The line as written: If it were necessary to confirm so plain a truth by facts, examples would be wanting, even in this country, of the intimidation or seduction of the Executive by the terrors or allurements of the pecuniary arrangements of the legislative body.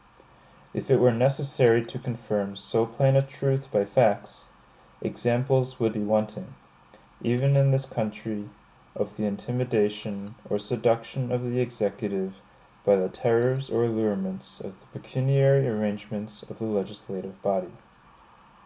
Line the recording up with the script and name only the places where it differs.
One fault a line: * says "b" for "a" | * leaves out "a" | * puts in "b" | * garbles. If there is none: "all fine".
all fine